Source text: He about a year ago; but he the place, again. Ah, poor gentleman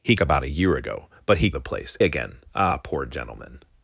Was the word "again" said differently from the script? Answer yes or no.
no